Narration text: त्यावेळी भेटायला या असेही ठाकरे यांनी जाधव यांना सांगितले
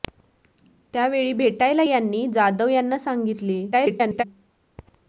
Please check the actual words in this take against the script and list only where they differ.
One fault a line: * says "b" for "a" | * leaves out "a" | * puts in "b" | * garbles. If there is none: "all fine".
* leaves out "या असेही ठाकरे"
* garbles